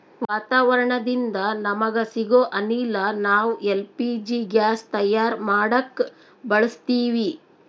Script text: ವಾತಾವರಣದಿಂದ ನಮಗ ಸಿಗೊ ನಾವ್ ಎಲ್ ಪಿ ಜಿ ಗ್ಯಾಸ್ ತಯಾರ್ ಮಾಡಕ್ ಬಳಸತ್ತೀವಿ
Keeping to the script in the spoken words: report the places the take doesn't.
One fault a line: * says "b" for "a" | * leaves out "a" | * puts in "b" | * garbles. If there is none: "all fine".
* puts in "ಅನಿಲ"